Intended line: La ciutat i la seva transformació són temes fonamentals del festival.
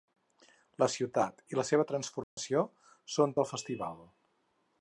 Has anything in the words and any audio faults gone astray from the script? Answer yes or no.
yes